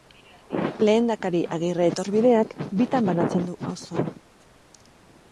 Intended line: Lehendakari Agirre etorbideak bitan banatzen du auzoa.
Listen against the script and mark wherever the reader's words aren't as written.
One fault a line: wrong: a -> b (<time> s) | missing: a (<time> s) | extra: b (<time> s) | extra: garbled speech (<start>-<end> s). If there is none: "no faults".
no faults